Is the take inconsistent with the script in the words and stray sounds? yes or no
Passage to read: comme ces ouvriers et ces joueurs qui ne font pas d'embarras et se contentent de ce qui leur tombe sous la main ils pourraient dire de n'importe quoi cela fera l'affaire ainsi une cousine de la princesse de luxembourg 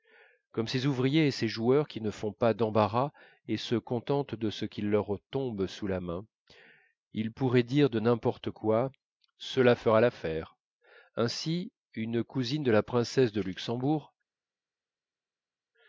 no